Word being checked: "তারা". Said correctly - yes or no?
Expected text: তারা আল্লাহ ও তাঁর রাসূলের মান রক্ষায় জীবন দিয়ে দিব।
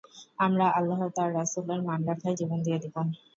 no